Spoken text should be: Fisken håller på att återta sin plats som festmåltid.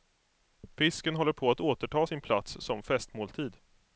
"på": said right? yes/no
yes